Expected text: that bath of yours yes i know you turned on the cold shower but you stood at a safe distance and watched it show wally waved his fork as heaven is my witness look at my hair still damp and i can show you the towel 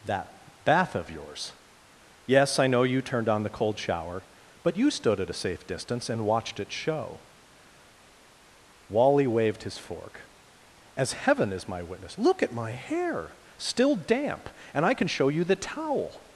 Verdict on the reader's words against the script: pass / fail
pass